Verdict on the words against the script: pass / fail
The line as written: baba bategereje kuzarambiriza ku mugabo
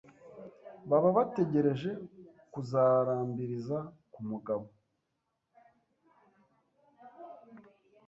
pass